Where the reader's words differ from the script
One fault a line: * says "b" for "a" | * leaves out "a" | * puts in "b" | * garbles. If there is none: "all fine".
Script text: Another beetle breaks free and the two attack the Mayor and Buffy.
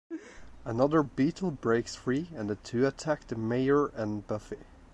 all fine